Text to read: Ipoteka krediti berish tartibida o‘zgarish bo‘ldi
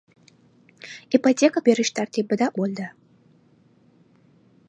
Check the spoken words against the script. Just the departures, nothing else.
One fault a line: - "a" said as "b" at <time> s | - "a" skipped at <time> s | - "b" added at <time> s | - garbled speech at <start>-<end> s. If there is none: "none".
- "krediti" skipped at 1.6 s
- "o‘zgarish" skipped at 2.5 s